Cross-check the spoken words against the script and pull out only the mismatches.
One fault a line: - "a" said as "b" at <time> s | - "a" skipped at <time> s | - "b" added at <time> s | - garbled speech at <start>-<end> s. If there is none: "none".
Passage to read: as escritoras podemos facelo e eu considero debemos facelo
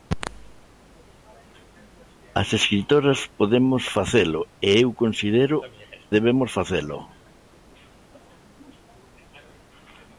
none